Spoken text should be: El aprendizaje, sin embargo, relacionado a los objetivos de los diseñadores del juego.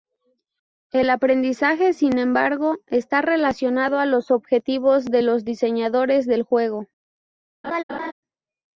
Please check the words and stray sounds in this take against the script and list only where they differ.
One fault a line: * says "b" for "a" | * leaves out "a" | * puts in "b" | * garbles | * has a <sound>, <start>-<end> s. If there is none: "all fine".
* puts in "está"
* has a laugh, 7.6-8.1 s